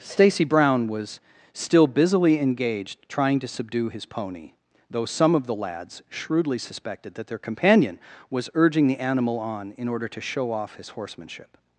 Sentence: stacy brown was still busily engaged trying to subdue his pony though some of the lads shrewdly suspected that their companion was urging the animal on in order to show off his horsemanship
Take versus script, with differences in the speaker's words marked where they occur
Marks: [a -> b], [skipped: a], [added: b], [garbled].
stacy brown was still busily engaged trying to subdue his pony though some of the lads shrewdly suspected that their companion was urging the animal on in order to show off his horsemanship